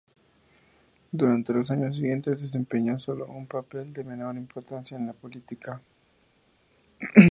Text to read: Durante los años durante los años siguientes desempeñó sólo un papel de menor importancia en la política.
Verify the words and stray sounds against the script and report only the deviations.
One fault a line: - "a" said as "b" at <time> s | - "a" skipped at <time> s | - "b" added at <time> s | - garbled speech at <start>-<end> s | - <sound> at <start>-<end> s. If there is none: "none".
- "durante los años" skipped at 1.9 s